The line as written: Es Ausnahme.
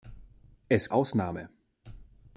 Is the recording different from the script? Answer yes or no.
no